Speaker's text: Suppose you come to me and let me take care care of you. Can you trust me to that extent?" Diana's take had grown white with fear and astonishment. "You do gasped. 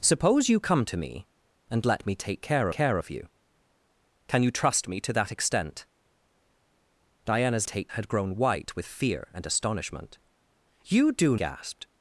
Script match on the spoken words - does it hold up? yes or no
yes